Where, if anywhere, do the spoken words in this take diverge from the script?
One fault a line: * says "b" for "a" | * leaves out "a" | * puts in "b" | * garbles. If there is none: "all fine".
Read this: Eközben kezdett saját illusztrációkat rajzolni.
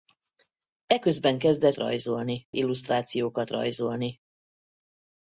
* says "rajzolni" for "saját"